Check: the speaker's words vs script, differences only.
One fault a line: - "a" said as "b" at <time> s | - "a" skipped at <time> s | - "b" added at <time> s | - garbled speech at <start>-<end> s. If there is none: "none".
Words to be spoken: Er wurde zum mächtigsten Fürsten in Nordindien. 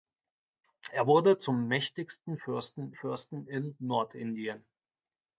- "Fürsten" added at 2.9 s